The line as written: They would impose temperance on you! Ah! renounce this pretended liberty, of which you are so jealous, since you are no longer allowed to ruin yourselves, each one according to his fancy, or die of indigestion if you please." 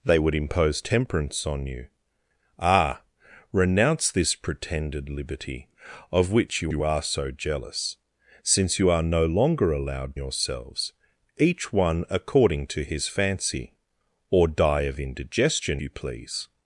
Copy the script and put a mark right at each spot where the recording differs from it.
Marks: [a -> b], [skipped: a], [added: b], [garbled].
They would impose temperance on you! Ah! renounce this pretended liberty, of which you [added: you] are so jealous, since you are no longer allowed [skipped: to ruin] yourselves, each one according to his fancy, or die of indigestion [skipped: if] you please."